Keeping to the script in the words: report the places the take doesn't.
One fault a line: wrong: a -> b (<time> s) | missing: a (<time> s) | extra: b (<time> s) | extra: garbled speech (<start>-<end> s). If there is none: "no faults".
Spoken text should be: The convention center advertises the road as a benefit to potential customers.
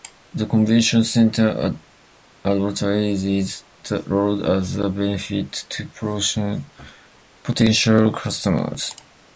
no faults